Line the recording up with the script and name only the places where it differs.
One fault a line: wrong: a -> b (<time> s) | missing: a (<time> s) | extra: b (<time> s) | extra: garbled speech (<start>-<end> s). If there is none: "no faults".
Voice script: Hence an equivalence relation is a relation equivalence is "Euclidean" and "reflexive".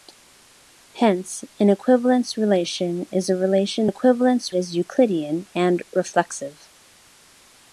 no faults